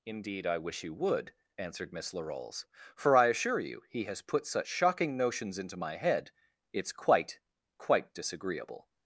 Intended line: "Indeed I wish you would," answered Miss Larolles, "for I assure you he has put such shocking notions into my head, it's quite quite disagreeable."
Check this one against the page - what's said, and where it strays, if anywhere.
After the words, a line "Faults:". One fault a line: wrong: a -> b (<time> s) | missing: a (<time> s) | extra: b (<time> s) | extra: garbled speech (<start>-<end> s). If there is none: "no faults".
"Indeed I wish you would," answered Miss Larolles, "for I assure you he has put such shocking notions into my head, it's quite quite disagreeable."
Faults:
no faults